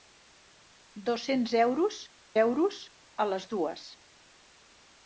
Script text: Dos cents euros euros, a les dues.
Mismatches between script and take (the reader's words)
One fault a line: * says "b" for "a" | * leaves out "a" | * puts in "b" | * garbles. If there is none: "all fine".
all fine